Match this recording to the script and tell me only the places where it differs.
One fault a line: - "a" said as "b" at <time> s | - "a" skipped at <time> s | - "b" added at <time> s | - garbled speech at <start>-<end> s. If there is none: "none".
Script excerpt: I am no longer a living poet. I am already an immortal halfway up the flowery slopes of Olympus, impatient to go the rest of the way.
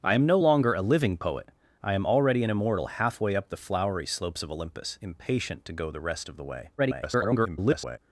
- garbled speech at 6.8-8.0 s